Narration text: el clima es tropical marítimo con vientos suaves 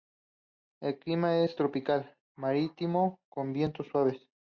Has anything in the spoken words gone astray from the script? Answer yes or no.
no